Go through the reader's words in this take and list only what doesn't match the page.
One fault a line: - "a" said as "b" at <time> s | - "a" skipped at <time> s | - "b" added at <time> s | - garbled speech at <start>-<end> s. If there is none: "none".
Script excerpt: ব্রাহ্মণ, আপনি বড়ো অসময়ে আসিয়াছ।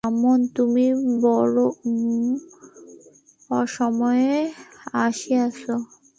- "আপনি" said as "তুমি" at 0.6 s